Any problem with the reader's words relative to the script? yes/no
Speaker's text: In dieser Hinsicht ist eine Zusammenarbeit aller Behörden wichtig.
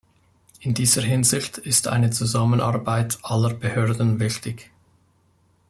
no